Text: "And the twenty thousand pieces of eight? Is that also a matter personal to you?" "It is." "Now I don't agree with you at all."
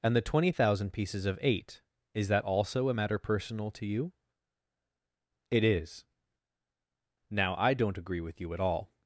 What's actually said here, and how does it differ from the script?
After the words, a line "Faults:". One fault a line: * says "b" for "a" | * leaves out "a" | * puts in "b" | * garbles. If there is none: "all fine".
"And the twenty thousand pieces of eight? Is that also a matter personal to you?" "It is." "Now I don't agree with you at all."
Faults:
all fine